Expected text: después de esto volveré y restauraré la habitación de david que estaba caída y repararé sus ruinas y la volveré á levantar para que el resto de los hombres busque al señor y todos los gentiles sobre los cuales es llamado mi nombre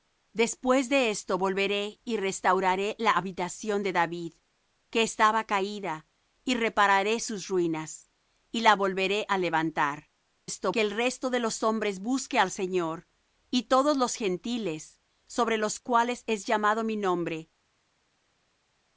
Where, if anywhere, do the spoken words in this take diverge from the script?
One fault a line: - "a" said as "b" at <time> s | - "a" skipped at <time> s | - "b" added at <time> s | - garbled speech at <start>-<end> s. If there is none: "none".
- "para" said as "esto" at 10.5 s